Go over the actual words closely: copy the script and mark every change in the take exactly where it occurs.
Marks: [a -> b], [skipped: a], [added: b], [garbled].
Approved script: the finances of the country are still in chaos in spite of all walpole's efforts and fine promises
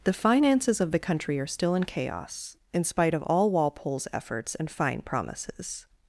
the finances of the country are still in chaos in spite of all walpole's efforts and fine promises